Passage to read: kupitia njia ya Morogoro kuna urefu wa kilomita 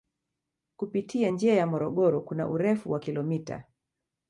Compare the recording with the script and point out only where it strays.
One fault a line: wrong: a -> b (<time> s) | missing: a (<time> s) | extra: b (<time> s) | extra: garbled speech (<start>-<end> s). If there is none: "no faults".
no faults